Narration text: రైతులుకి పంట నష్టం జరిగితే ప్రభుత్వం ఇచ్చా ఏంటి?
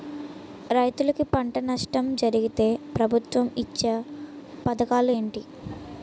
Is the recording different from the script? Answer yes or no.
yes